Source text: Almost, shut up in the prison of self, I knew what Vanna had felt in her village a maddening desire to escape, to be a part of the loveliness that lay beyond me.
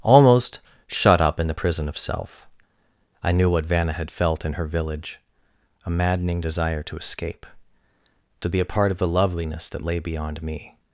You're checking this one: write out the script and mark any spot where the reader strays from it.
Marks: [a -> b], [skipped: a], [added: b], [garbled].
Almost, shut up in the prison of self, I knew what Vanna had felt in her village a maddening desire to escape, to be a part of the loveliness that lay beyond me.